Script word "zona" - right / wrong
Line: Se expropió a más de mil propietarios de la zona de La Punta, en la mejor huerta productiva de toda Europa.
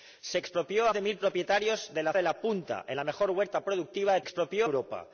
wrong